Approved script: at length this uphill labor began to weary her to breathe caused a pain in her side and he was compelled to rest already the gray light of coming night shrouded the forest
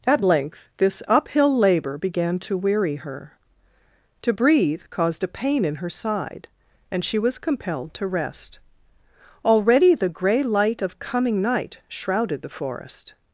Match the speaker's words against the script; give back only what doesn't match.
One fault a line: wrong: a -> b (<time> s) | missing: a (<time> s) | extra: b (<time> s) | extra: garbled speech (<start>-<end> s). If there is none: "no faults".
wrong: he -> she (7.0 s)